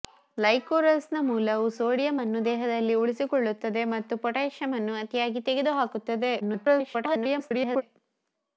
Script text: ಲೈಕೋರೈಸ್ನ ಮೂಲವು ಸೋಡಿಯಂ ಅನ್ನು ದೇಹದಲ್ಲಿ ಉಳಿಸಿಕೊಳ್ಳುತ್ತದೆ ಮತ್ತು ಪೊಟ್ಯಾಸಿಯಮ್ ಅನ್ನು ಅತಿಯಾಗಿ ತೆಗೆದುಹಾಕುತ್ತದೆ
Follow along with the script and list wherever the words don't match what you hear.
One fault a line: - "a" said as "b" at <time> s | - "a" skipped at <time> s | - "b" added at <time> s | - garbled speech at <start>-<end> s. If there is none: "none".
- garbled speech at 6.4-7.8 s